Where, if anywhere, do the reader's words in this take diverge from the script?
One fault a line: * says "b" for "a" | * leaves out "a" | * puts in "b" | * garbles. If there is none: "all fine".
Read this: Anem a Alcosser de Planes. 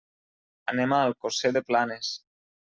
all fine